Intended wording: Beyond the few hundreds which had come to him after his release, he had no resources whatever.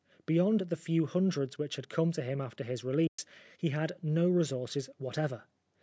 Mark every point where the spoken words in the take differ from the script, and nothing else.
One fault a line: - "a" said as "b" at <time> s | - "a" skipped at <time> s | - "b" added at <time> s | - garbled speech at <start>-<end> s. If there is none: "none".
none